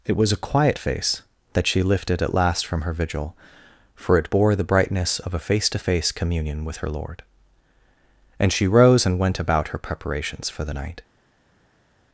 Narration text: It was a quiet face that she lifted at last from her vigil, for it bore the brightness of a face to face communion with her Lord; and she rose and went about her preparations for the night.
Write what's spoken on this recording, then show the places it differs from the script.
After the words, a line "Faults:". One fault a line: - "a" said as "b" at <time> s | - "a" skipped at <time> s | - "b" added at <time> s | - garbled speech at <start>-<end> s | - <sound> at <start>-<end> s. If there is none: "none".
It was a quiet face that she lifted at last from her vigil, for it bore the brightness of a face to face communion with her Lord; and she rose and went about her preparations for the night.
Faults:
none